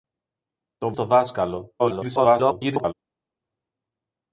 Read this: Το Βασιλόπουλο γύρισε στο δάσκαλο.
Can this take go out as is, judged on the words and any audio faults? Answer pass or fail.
fail